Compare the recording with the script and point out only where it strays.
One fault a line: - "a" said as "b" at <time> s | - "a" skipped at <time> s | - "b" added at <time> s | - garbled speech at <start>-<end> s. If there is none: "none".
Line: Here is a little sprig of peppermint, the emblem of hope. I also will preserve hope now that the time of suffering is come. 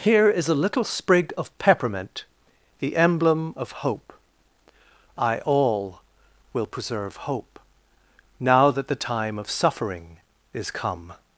- "also" said as "all" at 5.4 s